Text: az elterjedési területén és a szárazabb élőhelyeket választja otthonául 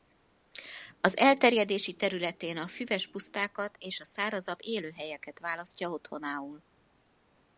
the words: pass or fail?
fail